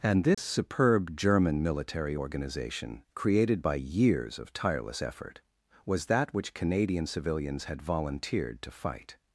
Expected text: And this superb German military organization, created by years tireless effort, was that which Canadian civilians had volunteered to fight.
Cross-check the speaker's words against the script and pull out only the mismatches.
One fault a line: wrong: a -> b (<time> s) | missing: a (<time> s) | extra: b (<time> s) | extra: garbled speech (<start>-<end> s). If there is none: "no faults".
extra: of (4.4 s)